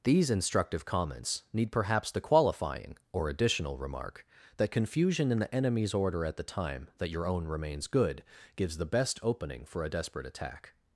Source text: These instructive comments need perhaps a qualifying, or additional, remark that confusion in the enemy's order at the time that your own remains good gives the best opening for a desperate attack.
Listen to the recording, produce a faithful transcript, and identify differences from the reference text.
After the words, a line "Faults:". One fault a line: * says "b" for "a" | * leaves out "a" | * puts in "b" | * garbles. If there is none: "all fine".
These instructive comments need perhaps the qualifying, or additional, remark that confusion in the enemy's order at the time that your own remains good gives the best opening for a desperate attack.
Faults:
* says "the" for "a"